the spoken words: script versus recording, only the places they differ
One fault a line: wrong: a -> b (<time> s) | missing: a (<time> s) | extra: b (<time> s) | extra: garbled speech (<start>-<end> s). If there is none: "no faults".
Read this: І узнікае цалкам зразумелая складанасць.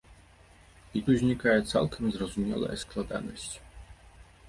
no faults